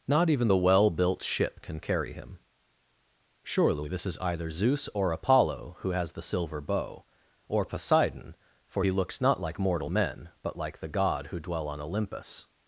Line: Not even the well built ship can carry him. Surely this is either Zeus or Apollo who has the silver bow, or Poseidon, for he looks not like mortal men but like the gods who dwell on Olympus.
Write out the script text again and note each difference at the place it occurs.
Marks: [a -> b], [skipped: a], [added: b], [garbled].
Not even the well built ship can carry him. Surely this is either Zeus or Apollo who has the silver bow, or Poseidon, for he looks not like mortal men but like the [gods -> god] who dwell on Olympus.